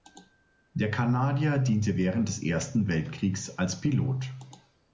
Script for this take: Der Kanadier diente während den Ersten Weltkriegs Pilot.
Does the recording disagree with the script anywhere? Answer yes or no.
yes